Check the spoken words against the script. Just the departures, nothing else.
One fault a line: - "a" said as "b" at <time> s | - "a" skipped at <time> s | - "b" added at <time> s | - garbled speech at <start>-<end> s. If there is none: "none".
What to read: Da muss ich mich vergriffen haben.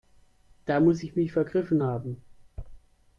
none